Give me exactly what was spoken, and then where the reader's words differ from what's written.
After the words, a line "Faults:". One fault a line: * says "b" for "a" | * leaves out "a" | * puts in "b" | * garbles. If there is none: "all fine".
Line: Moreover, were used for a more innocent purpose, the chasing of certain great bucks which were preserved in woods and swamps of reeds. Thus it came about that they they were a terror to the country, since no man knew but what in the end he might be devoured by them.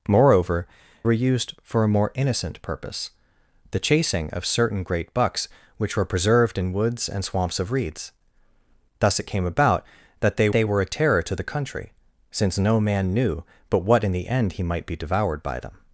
Moreover, were used for a more innocent purpose, the chasing of certain great bucks which were preserved in woods and swamps of reeds. Thus it came about that they they were a terror to the country, since no man knew but what in the end he might be devoured by them.
Faults:
all fine